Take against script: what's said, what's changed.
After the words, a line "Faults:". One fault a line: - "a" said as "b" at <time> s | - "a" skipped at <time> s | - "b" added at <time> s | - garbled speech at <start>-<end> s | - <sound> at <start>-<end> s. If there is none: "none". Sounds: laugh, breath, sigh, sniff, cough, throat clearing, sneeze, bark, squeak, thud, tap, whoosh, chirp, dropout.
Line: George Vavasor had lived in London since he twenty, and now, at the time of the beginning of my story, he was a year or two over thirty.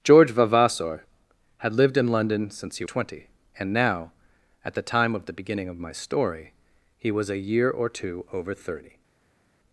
George Vavasor had lived in London since he twenty, and now, at the time of the beginning of my story, he was a year or two over thirty.
Faults:
none